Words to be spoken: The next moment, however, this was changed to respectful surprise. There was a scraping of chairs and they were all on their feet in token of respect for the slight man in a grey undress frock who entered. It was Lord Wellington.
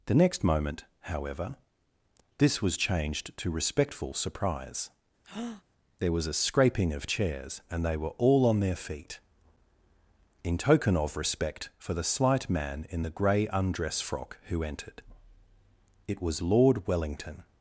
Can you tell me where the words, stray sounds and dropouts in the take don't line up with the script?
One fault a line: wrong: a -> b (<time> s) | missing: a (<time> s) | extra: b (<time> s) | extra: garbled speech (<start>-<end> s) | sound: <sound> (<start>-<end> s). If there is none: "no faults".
sound: breath (5.2-5.6 s)
wrong: a -> the (13.0 s)